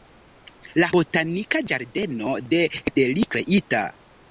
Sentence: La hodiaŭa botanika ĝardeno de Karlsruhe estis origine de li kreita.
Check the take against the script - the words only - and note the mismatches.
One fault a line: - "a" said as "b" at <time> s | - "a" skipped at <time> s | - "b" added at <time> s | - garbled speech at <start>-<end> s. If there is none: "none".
- "hodiaŭa" skipped at 0.9 s
- "Karlsruhe estis origine" skipped at 2.6 s